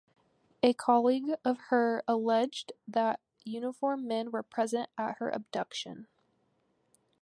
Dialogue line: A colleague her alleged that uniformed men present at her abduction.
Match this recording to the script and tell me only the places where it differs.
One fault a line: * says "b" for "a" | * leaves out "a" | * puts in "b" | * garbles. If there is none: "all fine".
* puts in "of"
* puts in "were"